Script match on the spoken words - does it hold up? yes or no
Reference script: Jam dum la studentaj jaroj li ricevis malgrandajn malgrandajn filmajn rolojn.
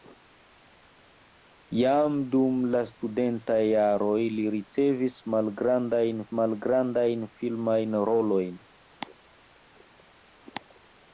yes